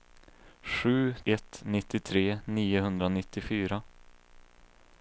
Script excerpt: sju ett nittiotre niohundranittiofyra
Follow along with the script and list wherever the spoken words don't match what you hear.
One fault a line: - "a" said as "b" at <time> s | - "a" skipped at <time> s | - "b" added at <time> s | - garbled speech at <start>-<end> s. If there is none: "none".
none